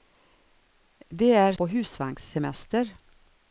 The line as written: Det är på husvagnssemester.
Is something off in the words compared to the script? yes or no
no